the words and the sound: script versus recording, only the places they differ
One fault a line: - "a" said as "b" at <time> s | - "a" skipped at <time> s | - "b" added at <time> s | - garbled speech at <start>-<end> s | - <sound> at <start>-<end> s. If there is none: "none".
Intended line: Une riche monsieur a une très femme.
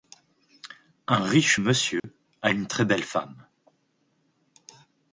- "Une" said as "Un" at 1.1 s
- dropout at 2.0-2.0 s
- "belle" added at 2.8 s